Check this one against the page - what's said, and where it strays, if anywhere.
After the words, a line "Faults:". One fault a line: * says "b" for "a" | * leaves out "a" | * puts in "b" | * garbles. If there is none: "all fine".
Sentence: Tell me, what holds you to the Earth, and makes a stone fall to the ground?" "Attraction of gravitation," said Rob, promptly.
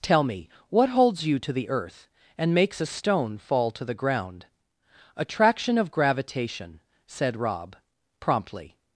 Tell me, what holds you to the Earth, and makes a stone fall to the ground?" "Attraction of gravitation," said Rob, promptly.
Faults:
all fine